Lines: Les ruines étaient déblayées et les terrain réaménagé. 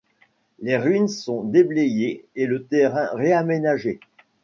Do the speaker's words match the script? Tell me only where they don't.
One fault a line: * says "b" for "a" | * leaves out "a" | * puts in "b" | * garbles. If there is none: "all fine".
* says "sont" for "étaient"
* says "le" for "les"